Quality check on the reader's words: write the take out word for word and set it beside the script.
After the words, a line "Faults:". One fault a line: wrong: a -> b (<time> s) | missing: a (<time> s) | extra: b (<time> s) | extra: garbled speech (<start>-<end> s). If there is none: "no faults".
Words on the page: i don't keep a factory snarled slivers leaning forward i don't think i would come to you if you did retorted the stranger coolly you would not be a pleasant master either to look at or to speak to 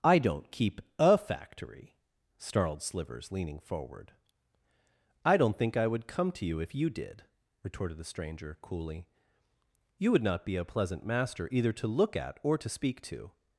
i don't keep a factory snarled slivers leaning forward i don't think i would come to you if you did retorted the stranger coolly you would not be a pleasant master either to look at or to speak to
Faults:
no faults